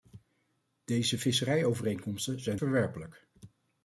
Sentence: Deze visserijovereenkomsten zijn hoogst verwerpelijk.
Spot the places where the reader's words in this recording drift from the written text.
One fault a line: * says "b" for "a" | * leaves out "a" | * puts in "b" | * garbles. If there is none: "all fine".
* leaves out "hoogst"